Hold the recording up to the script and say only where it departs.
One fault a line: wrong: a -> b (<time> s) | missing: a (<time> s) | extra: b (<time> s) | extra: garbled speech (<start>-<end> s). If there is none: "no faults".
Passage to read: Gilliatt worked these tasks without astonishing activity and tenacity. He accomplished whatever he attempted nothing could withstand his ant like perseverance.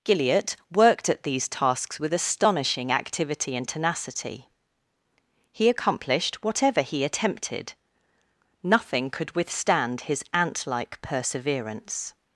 extra: at (1.1 s)
wrong: without -> with (2.0 s)